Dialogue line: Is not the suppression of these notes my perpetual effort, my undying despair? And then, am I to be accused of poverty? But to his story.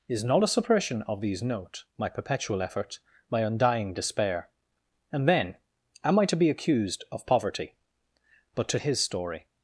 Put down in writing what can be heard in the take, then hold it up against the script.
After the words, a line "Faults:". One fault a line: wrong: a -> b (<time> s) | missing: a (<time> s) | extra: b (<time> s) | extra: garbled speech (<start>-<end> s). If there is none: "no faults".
Is not a suppression of these note my perpetual effort, my undying despair? And then, am I to be accused of poverty? But to his story.
Faults:
wrong: the -> a (0.4 s)
wrong: notes -> note (1.4 s)